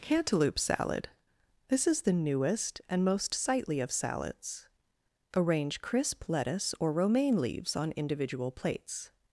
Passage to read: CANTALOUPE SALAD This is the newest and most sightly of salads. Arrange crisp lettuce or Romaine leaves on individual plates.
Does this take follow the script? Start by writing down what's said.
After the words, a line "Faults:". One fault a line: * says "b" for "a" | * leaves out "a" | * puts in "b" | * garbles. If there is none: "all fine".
CANTALOUPE SALAD This is the newest and most sightly of salads. Arrange crisp lettuce or Romaine leaves on individual plates.
Faults:
all fine